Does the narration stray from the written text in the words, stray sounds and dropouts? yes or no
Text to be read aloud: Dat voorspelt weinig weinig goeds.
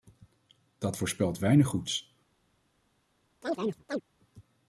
yes